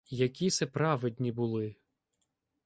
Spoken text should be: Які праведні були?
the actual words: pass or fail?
fail